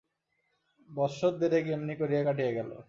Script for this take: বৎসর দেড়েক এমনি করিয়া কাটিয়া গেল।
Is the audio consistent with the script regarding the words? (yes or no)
yes